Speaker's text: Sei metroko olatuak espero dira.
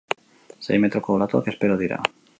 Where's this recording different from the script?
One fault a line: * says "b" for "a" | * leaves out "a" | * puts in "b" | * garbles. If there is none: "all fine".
all fine